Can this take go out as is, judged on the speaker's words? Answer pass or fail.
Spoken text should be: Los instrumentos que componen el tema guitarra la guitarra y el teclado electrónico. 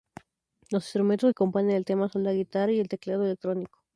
fail